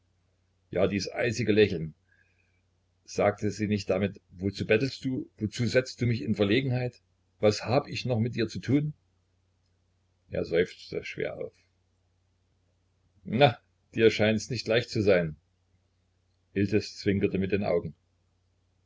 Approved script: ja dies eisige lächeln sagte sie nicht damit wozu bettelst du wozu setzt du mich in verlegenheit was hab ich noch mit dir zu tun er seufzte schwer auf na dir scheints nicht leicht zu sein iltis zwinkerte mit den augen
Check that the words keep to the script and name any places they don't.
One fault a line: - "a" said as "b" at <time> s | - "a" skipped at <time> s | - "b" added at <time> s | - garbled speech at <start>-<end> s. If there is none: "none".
none